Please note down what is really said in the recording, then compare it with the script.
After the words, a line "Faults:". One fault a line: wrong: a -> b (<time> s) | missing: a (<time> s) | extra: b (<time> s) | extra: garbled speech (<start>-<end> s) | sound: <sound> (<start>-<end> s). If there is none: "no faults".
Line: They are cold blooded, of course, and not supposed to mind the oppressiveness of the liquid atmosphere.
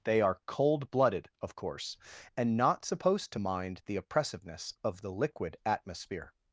They are cold blooded, of course, and not supposed to mind the oppressiveness of the liquid atmosphere.
Faults:
no faults